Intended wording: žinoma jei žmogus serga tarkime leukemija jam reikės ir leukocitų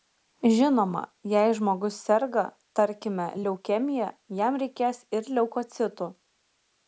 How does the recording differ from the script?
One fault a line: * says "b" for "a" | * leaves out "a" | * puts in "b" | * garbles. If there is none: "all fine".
all fine